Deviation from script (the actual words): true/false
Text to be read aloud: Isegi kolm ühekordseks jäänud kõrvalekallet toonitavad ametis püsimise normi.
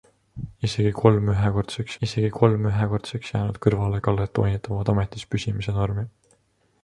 true